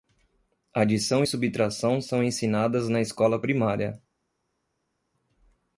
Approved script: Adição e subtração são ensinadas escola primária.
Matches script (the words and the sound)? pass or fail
fail